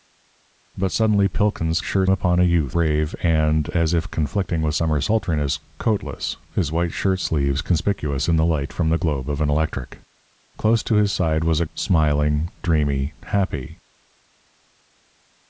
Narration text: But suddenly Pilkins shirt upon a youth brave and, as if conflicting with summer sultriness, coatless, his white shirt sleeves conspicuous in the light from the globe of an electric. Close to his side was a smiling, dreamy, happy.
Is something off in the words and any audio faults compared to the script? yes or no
no